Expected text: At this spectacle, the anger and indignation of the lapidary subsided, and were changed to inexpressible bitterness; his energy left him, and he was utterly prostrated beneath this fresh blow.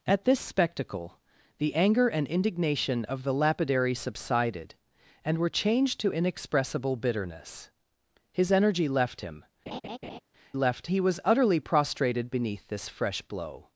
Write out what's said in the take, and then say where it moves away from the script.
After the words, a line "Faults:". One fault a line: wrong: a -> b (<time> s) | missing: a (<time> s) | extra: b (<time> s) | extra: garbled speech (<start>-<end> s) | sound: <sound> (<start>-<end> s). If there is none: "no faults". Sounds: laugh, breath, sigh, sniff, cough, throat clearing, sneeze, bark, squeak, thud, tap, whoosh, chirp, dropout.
At this spectacle, the anger and indignation of the lapidary subsided, and were changed to inexpressible bitterness; his energy left him, left he was utterly prostrated beneath this fresh blow.
Faults:
sound: laugh (9.7-10.2 s)
wrong: and -> left (10.5 s)